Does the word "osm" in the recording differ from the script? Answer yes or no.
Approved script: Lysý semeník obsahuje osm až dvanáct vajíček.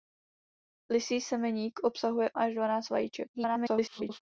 yes